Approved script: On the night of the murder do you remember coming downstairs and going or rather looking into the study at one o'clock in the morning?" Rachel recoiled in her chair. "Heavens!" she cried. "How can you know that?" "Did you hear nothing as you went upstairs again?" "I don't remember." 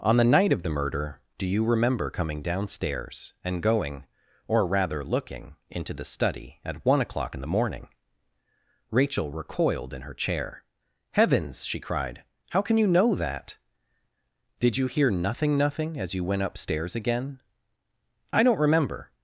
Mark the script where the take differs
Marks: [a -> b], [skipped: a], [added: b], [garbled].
On the night of the murder do you remember coming downstairs and going or rather looking into the study at one o'clock in the morning?" Rachel recoiled in her chair. "Heavens!" she cried. "How can you know that?" "Did you hear nothing [added: nothing] as you went upstairs again?" "I don't remember."